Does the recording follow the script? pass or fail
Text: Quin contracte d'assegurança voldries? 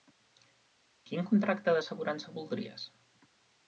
pass